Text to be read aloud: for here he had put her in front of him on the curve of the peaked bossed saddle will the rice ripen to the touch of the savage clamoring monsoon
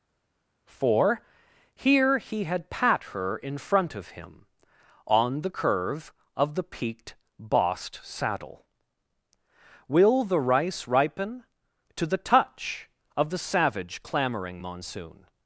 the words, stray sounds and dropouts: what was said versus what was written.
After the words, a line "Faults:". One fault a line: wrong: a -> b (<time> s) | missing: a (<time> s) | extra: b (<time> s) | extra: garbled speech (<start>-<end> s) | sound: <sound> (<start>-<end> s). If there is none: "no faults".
for here he had pat her in front of him on the curve of the peaked bossed saddle will the rice ripen to the touch of the savage clamoring monsoon
Faults:
wrong: put -> pat (2.7 s)